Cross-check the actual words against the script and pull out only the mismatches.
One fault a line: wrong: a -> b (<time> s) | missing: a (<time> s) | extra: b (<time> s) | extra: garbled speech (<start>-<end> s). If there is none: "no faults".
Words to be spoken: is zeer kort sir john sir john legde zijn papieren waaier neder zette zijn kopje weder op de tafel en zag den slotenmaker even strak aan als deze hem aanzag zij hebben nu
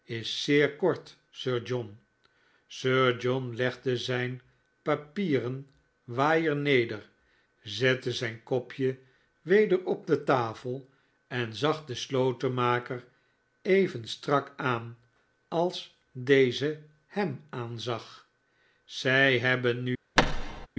no faults